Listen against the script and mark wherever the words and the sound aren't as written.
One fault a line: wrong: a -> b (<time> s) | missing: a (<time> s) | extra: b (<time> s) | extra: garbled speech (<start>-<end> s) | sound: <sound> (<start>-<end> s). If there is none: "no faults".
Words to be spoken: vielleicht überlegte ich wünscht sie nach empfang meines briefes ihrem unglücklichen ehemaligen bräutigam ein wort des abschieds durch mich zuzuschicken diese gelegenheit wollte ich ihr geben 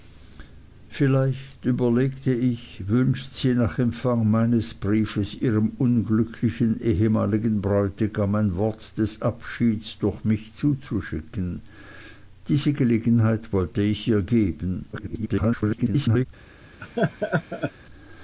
extra: garbled speech (14.9-16.3 s)
sound: laugh (16.8-17.7 s)